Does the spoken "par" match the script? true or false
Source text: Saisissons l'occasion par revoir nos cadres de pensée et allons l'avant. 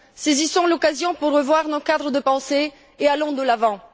false